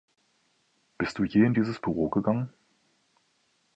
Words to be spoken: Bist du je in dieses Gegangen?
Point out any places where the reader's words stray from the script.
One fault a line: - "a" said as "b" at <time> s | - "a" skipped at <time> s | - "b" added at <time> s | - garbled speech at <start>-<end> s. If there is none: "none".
- "Büro" added at 1.8 s